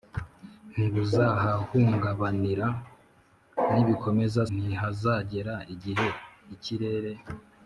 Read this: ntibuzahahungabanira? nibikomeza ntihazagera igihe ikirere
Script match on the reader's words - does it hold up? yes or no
yes